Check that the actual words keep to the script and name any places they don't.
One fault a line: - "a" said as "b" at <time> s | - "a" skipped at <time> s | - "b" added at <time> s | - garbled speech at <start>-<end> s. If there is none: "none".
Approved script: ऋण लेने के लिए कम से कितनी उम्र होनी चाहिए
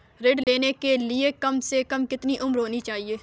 - "कम" added at 1.8 s